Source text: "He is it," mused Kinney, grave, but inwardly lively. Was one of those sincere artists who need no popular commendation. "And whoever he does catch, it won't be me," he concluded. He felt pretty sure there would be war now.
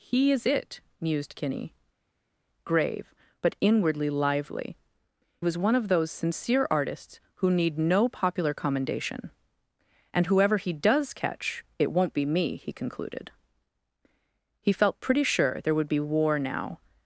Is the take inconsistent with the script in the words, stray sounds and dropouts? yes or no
no